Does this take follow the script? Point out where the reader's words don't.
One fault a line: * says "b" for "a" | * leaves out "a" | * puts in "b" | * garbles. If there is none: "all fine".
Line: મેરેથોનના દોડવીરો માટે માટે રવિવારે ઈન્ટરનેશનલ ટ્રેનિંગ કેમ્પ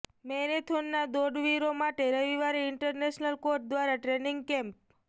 * leaves out "માટે"
* puts in "કોચ દ્વારા"